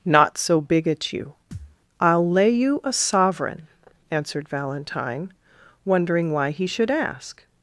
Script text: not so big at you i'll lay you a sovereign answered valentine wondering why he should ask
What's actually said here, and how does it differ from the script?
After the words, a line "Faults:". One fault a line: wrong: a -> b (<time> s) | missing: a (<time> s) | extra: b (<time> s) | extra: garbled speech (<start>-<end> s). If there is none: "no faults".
not so big at you i'll lay you a sovereign answered valentine wondering why he should ask
Faults:
no faults